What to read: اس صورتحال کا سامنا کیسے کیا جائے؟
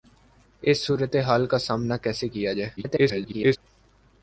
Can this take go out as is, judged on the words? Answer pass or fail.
fail